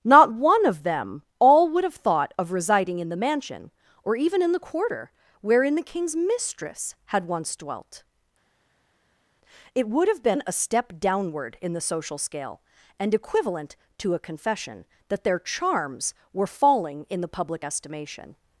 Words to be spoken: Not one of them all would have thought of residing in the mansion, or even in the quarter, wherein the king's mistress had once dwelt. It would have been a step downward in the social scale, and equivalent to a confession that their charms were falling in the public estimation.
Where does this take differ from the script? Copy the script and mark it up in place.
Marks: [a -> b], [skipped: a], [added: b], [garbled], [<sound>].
Not one of them all would have thought of residing in the mansion, or even in the quarter, wherein the king's mistress had once dwelt. It would have been a step downward in the social scale, and equivalent to a confession that their charms were falling in the public estimation.